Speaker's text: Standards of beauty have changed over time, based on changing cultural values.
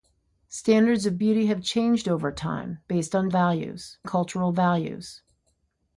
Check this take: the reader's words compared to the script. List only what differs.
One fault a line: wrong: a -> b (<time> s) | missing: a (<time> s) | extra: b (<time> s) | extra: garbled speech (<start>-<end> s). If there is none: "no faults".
wrong: changing -> values (3.3 s)